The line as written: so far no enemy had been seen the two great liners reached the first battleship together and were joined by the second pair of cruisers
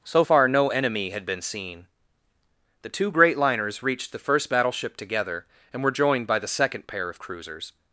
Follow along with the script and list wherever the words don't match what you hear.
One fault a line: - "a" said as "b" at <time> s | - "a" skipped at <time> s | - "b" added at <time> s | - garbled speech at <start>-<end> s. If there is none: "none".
none